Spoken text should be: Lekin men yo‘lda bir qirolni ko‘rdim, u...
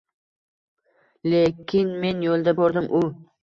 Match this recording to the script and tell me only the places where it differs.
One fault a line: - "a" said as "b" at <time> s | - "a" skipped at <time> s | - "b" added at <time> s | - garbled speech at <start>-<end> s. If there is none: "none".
- "bir qirolni" skipped at 2.6 s